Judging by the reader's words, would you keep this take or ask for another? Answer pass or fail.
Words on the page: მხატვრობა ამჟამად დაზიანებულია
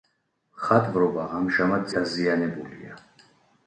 pass